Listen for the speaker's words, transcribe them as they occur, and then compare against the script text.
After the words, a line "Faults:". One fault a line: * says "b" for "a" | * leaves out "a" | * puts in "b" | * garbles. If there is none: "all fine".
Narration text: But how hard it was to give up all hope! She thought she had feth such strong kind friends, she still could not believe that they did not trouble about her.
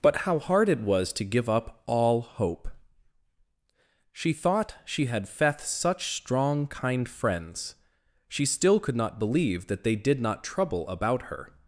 But how hard it was to give up all hope! She thought she had feth such strong kind friends, she still could not believe that they did not trouble about her.
Faults:
all fine